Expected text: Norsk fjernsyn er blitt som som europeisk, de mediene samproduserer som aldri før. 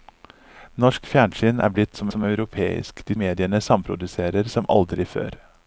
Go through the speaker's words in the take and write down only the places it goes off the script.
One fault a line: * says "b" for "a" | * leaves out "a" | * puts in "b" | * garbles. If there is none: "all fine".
all fine